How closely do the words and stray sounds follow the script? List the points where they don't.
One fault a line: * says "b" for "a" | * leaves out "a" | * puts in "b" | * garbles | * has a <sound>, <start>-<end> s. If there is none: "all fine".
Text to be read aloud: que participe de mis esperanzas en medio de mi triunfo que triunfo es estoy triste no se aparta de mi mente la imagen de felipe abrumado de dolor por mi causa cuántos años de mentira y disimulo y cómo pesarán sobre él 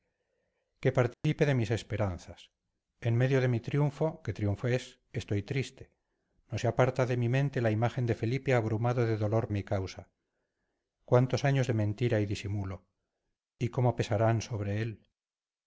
* has a dropout, 1.1-1.2 s
* leaves out "por"